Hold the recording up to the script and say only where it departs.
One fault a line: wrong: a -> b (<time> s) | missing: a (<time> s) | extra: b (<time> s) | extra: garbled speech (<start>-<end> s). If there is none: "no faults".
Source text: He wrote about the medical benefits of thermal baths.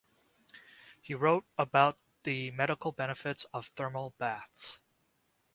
no faults